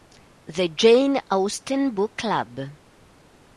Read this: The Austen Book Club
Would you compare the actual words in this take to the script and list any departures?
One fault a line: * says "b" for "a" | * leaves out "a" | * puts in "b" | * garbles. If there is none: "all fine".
* puts in "Jane"